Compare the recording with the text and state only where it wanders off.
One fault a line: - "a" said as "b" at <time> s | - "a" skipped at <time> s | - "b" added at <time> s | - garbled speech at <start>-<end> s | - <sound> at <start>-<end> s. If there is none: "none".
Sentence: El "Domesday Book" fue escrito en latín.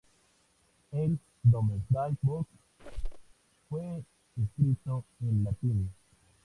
- squeak at 2.8-3.3 s